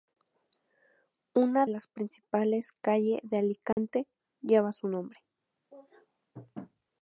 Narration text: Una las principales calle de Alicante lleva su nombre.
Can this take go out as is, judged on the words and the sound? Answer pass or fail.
fail